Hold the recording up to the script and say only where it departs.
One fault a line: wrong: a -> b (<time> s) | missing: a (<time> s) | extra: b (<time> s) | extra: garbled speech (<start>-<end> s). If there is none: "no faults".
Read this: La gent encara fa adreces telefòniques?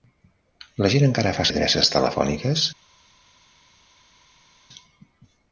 no faults